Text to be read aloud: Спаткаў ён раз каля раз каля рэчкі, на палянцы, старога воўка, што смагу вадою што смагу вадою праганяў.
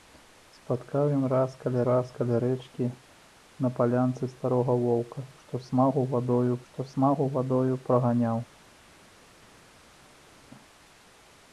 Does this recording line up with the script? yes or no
yes